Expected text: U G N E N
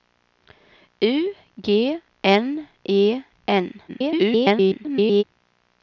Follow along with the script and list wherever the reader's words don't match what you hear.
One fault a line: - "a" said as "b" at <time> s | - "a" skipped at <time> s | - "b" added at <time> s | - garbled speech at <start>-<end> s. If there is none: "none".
- garbled speech at 3.9-5.2 s